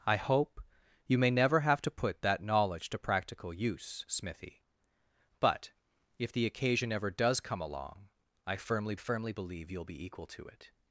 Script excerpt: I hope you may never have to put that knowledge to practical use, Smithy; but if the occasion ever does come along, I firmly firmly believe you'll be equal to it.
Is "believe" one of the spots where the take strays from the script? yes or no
no